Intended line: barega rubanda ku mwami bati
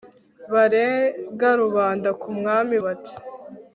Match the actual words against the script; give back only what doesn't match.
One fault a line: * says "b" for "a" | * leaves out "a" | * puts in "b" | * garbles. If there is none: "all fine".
all fine